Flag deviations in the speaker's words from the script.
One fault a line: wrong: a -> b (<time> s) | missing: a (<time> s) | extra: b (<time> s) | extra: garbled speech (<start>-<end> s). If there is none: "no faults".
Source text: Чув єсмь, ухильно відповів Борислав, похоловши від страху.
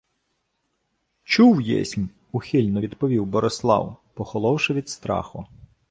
no faults